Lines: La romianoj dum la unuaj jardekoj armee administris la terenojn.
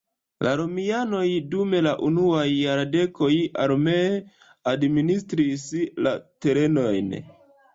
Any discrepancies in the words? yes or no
no